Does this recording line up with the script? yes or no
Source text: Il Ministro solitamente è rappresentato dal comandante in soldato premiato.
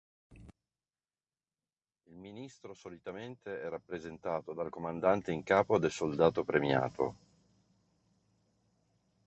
no